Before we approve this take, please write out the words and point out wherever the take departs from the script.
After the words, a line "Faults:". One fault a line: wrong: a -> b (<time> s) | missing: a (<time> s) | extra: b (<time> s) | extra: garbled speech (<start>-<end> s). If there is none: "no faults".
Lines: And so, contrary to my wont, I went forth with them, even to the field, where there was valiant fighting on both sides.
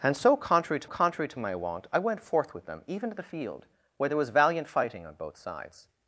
And so, contrary to contrary to my wont, I went forth with them, even to the field, where there was valiant fighting on both sides.
Faults:
extra: contrary to (0.8 s)